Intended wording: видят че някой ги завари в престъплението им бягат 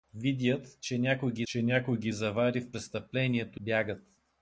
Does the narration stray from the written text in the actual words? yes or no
yes